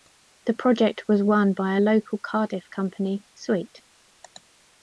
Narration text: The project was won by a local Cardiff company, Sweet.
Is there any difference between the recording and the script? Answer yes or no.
no